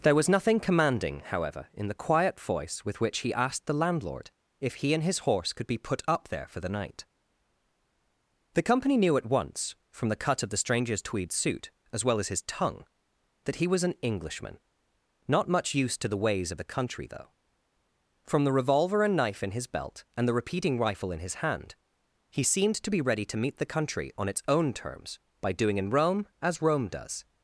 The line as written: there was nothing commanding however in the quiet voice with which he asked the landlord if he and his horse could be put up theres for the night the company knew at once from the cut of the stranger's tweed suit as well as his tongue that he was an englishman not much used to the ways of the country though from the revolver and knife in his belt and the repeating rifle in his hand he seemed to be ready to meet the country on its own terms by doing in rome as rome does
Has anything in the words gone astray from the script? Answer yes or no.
yes